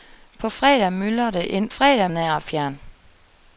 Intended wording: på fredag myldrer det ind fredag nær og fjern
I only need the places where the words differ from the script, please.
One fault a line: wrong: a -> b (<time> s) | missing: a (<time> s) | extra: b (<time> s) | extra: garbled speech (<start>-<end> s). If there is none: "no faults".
no faults